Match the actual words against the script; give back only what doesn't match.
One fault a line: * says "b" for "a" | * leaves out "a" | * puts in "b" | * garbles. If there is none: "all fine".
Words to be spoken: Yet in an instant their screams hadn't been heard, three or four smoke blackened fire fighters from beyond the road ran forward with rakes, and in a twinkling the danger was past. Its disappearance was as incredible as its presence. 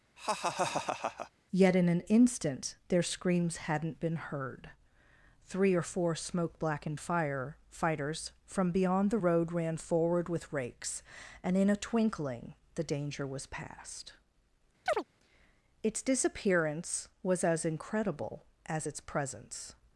all fine